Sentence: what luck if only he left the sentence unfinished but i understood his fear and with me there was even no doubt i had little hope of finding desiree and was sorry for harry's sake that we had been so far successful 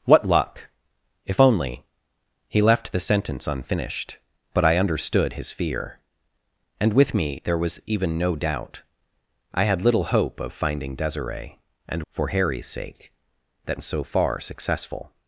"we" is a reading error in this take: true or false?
true